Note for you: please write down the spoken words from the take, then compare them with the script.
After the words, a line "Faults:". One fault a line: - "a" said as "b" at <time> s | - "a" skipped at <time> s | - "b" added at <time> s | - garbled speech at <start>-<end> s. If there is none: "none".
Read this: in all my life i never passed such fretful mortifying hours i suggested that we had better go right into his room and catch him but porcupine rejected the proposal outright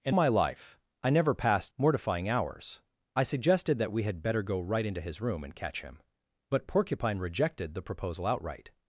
in my life i never passed mortifying hours i suggested that we had better go right into his room and catch him but porcupine rejected the proposal outright
Faults:
- "all" skipped at 0.1 s
- "such fretful" skipped at 1.7 s